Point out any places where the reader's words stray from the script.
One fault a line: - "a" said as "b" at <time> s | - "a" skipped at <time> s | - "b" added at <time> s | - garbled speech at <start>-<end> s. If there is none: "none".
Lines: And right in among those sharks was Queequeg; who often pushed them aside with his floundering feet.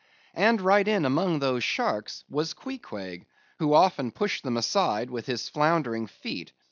none